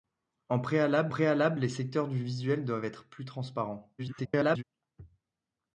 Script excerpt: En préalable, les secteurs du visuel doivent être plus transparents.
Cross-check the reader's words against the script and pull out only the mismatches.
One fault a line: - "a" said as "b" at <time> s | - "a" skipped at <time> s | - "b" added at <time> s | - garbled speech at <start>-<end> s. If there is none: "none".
- "préalable" added at 1.1 s
- garbled speech at 4.0-4.6 s